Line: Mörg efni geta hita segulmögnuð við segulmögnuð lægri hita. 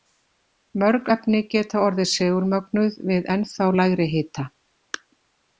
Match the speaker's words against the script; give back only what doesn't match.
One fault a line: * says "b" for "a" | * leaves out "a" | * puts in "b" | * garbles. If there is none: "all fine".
* says "orðið" for "hita"
* says "ennþá" for "segulmögnuð"